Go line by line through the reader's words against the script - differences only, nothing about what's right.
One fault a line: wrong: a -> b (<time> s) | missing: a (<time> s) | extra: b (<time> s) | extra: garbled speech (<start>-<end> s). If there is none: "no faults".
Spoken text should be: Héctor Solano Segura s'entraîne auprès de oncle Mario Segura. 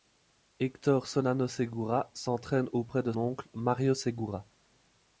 no faults